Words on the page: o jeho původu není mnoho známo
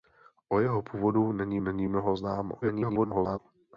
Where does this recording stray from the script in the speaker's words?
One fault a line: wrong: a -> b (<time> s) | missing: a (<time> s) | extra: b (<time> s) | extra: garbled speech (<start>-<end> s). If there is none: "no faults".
extra: není (1.6 s)
extra: garbled speech (2.6-3.4 s)